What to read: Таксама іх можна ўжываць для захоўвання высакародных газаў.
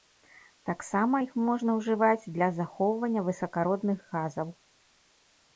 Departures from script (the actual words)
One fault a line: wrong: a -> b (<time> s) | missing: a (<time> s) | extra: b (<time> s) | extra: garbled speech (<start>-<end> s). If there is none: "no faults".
no faults